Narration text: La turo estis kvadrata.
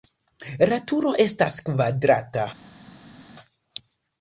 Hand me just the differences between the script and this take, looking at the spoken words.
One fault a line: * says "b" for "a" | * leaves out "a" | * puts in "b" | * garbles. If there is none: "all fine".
* says "estas" for "estis"